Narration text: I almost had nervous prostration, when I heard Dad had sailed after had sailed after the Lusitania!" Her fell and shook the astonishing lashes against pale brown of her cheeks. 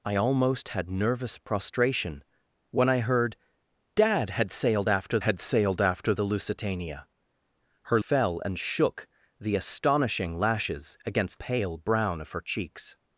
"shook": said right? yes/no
yes